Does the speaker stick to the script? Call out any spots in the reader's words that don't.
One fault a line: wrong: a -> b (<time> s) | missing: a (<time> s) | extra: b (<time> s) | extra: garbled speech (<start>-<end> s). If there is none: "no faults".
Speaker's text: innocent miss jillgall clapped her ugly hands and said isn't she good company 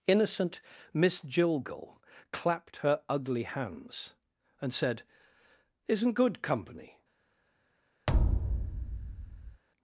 missing: she (6.1 s)